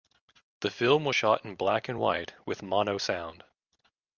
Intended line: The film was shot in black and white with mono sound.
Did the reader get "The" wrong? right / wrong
right